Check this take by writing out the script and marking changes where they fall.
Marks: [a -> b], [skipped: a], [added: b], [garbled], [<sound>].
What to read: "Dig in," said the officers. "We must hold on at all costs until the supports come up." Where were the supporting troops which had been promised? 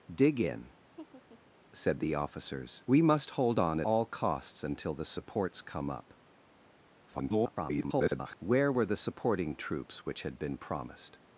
"Dig in," [laugh] said the officers. "We must hold on [skipped: at] all costs until the supports come up." [garbled] Where were the supporting troops which had been promised?